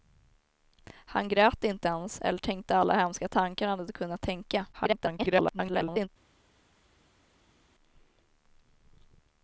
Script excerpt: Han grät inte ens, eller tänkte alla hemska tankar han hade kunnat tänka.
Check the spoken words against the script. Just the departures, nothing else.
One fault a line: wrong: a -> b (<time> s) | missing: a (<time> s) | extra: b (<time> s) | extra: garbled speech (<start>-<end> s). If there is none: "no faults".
extra: garbled speech (4.7-6.1 s)